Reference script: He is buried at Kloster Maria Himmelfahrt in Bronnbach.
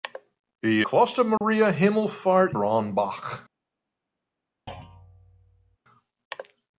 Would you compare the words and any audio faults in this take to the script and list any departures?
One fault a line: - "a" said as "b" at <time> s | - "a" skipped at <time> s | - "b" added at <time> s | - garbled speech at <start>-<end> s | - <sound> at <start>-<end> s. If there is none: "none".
- "is buried at" skipped at 0.8 s
- dropout at 1.4-1.4 s
- "in" skipped at 2.5 s
- thud at 4.7-5.8 s